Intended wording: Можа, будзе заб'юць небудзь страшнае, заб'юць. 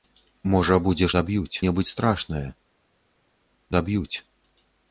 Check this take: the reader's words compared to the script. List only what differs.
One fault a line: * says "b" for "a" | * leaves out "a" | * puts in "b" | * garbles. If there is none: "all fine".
all fine